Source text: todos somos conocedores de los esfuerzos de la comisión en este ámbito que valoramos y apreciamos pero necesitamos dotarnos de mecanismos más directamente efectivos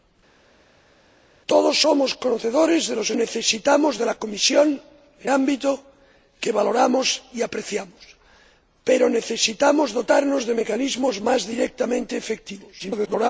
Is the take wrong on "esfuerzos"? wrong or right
wrong